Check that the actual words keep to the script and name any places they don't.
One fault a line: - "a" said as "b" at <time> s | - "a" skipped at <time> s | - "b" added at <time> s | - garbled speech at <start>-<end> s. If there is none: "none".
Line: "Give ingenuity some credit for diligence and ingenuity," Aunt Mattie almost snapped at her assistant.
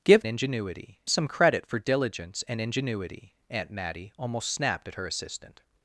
none